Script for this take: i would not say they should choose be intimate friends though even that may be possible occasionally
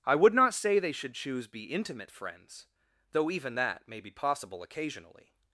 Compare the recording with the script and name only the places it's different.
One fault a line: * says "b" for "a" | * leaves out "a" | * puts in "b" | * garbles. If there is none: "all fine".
all fine